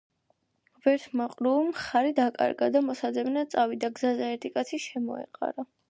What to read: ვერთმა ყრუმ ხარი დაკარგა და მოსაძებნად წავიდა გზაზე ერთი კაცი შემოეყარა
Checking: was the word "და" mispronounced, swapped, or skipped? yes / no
no